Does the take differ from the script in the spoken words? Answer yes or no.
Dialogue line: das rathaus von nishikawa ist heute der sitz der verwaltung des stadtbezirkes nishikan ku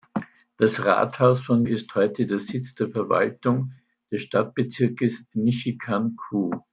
yes